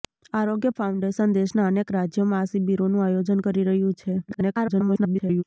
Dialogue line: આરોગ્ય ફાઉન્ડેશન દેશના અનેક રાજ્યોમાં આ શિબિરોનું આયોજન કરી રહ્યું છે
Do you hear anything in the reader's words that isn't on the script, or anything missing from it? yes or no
yes